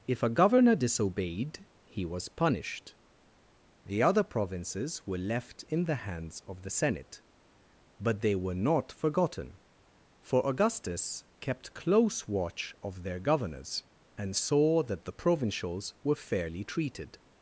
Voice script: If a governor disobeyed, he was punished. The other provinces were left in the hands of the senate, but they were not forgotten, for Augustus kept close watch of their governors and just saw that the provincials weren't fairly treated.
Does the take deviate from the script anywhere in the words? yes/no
yes